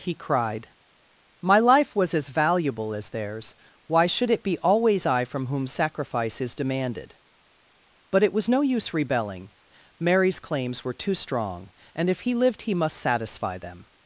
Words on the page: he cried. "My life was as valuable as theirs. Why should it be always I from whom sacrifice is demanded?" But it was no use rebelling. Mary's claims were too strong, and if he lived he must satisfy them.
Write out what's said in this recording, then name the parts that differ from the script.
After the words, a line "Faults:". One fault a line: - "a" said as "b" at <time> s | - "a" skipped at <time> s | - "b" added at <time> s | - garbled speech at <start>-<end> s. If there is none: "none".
he cried. "My life was as valuable as theirs. Why should it be always I from whom sacrifice is demanded?" But it was no use rebelling. Mary's claims were too strong, and if he lived he must satisfy them.
Faults:
none